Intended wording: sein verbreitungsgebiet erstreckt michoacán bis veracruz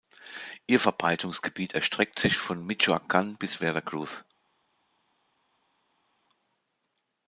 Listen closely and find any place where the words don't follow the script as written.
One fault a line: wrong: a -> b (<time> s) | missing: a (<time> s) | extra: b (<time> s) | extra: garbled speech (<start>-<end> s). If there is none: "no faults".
wrong: sein -> ihr (0.7 s)
extra: sich von (2.2 s)